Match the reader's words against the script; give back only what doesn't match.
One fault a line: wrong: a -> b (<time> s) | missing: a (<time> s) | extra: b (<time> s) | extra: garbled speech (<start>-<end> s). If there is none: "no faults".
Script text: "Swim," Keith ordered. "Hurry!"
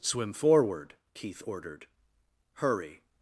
extra: forward (0.3 s)